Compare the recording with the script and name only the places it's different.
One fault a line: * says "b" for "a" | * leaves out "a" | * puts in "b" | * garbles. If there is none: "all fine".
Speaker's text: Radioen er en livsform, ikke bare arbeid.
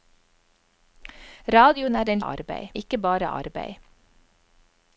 * says "arbeid" for "livsform"